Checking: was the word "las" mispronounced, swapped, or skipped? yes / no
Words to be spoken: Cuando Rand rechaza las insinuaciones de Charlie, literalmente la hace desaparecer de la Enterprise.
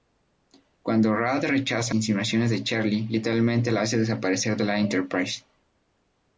yes